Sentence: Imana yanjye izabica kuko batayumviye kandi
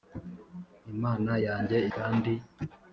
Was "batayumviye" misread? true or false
true